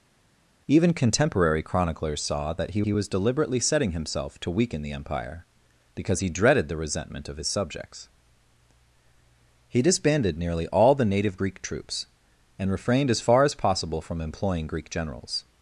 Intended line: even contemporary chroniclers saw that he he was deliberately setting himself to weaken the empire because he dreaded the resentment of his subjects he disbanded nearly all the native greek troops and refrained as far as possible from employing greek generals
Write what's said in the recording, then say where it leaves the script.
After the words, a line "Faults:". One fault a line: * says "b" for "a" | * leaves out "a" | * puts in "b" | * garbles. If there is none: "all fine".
even contemporary chroniclers saw that he he was deliberately setting himself to weaken the empire because he dreaded the resentment of his subjects he disbanded nearly all the native greek troops and refrained as far as possible from employing greek generals
Faults:
all fine